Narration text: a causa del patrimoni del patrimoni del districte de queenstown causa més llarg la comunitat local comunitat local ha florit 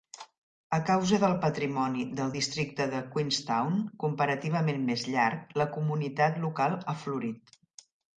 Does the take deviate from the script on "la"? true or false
false